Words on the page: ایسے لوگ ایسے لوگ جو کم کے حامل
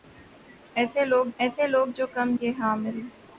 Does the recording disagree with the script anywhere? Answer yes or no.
no